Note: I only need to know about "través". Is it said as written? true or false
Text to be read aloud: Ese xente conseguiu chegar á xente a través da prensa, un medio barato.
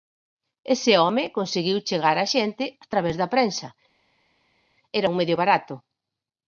true